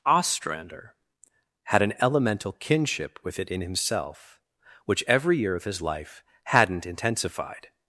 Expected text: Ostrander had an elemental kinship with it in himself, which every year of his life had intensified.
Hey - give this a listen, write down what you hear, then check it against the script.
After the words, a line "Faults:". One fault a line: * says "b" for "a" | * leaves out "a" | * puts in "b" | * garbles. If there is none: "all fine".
Ostrander had an elemental kinship with it in himself, which every year of his life hadn't intensified.
Faults:
* says "hadn't" for "had"